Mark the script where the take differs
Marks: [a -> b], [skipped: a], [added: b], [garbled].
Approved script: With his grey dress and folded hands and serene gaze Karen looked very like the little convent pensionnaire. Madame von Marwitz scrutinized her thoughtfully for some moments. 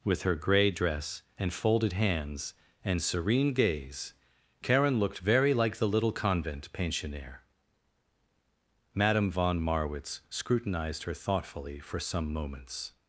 With [his -> her] grey dress and folded hands and serene gaze Karen looked very like the little convent pensionnaire. Madame von Marwitz scrutinized her thoughtfully for some moments.